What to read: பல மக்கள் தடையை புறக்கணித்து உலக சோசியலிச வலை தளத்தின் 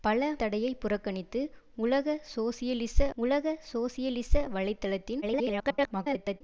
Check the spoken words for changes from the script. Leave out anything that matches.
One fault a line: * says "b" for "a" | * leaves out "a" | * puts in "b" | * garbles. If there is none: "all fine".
* leaves out "மக்கள்"
* puts in "உலக சோசியலிச"
* garbles